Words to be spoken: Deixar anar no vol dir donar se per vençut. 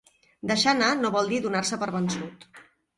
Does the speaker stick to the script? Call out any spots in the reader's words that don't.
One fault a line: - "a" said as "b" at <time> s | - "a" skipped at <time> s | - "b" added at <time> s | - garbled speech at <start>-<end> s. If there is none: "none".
none